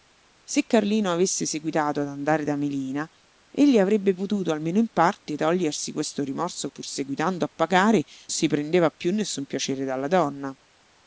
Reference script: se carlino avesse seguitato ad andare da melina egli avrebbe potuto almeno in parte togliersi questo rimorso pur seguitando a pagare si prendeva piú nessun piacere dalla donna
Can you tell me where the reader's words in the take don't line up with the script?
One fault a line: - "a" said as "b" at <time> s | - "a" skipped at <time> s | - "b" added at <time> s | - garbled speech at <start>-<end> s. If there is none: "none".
none